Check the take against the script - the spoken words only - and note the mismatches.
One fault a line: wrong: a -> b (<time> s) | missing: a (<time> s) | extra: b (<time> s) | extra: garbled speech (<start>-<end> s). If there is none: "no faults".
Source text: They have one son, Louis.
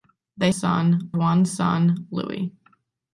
wrong: have -> son (0.5 s)